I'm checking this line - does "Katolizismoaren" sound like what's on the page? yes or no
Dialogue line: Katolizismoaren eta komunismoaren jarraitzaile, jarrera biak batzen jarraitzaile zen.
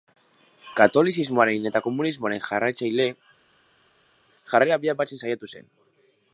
yes